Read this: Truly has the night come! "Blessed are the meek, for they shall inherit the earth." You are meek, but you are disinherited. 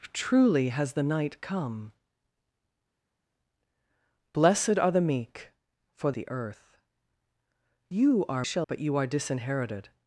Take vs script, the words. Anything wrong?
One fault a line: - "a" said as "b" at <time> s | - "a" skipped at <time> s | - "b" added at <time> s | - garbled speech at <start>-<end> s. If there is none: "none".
- "they shall inherit" skipped at 6.1 s
- "meek" said as "shall" at 8.4 s